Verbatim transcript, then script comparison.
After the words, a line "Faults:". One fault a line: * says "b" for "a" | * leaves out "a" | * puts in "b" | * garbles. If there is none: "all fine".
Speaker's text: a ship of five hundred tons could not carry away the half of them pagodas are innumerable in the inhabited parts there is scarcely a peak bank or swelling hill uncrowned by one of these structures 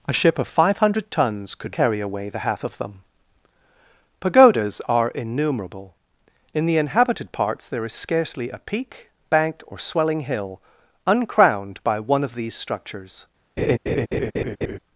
a ship of five hundred tons could carry away the half of them pagodas are innumerable in the inhabited parts there is scarcely a peak bank or swelling hill uncrowned by one of these structures
Faults:
* leaves out "not"